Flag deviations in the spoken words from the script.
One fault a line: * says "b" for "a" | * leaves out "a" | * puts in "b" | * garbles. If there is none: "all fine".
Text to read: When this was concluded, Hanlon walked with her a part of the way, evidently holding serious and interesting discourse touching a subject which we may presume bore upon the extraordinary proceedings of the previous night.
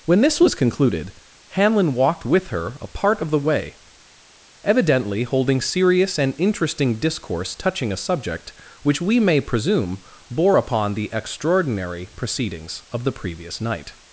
all fine